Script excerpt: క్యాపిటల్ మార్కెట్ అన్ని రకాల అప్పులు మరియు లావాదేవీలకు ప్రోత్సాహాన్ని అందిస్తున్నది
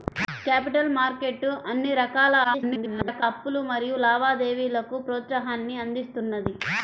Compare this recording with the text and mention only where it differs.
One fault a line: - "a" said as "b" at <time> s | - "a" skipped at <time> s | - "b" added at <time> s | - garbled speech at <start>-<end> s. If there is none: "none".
- garbled speech at 2.4-3.2 s